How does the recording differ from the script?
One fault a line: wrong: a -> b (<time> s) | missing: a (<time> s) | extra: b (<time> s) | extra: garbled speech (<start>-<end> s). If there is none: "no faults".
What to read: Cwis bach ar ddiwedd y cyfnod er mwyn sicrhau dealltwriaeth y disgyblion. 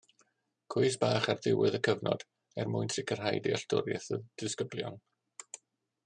no faults